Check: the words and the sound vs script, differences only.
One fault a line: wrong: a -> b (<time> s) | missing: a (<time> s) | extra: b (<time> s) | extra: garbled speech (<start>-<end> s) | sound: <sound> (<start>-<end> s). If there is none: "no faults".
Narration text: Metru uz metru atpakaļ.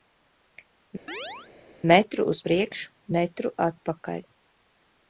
sound: chirp (1.1-1.5 s)
extra: priekšu (2.5 s)